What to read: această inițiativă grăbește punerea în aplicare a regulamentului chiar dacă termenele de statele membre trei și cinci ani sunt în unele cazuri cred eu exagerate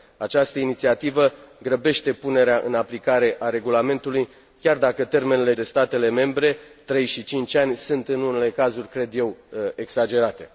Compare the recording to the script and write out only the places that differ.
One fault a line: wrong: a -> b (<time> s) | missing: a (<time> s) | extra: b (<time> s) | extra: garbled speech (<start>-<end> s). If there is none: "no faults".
no faults